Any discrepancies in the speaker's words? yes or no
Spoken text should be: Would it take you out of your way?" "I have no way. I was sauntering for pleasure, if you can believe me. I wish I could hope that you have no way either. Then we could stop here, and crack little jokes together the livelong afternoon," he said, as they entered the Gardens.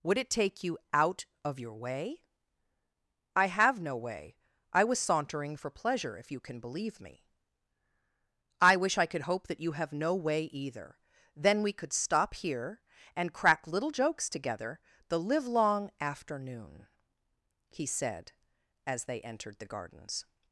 no